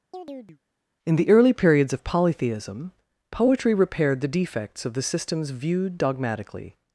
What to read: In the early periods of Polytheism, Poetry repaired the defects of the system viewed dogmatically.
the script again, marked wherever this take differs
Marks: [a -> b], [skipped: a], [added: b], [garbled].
In the early periods of Polytheism, Poetry repaired the defects of the [system -> systems] viewed dogmatically.